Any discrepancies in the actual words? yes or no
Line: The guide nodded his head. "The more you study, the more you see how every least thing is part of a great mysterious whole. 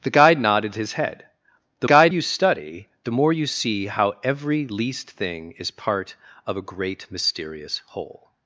yes